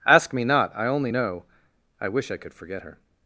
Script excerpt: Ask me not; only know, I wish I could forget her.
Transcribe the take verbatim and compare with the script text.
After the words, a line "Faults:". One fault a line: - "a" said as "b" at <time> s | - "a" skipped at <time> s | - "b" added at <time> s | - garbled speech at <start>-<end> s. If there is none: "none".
Ask me not; I only know, I wish I could forget her.
Faults:
- "I" added at 0.8 s